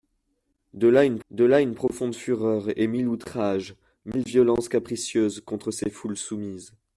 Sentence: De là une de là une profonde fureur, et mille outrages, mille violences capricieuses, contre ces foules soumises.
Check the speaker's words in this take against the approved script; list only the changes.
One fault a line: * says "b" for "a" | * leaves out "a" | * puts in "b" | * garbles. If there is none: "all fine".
all fine